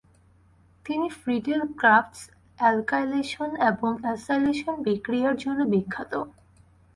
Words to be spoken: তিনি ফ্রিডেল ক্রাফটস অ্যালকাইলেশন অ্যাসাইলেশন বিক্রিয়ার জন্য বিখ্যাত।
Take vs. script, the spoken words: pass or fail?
fail